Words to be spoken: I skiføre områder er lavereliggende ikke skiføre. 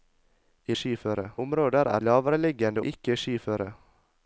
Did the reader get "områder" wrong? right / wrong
right